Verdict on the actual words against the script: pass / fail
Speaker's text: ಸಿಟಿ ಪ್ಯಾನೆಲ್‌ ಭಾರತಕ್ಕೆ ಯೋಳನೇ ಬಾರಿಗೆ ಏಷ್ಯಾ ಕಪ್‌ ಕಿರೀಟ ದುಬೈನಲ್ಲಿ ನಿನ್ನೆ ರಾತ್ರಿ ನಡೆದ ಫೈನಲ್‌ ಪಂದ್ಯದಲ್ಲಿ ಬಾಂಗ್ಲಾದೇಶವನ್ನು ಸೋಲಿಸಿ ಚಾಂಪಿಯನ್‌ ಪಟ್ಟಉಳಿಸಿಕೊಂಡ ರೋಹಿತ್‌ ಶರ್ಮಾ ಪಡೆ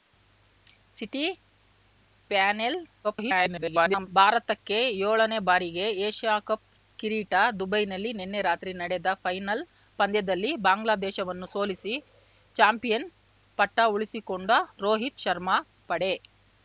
fail